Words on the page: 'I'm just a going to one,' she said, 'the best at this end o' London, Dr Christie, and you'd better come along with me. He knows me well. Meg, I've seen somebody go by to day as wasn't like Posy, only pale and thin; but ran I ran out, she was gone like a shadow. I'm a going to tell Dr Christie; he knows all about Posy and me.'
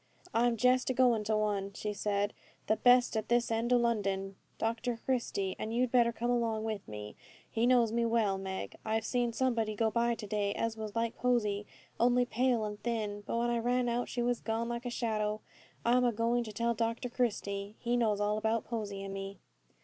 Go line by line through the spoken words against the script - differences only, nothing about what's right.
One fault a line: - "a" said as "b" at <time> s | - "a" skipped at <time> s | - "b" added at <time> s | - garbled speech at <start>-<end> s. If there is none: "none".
- "wasn't" said as "was" at 10.8 s
- "ran" said as "when" at 13.4 s